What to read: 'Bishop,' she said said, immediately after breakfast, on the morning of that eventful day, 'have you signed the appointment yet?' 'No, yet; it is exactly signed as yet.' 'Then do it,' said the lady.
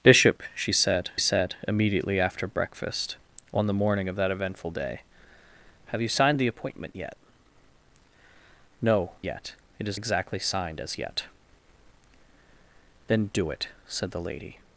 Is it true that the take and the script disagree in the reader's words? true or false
false